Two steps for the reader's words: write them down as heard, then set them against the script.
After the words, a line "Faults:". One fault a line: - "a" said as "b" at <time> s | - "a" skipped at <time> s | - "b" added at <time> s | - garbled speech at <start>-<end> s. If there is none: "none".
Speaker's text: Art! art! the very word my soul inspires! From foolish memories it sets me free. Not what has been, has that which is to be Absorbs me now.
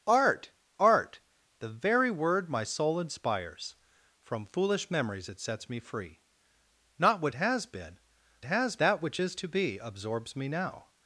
Art! art! the very word my soul inspires! From foolish memories it sets me free. Not what has been, has that which is to be Absorbs me now.
Faults:
none